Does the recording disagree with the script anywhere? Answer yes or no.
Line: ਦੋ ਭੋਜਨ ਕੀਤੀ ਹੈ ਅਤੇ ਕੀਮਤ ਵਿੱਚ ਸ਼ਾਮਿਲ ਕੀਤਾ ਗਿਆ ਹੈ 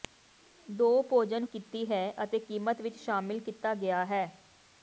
no